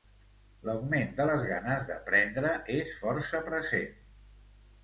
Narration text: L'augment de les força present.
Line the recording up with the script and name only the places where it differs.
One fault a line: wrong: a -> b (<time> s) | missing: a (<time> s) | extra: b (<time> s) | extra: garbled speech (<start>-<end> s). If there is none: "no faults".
extra: ganes d'aprendre és (1.5 s)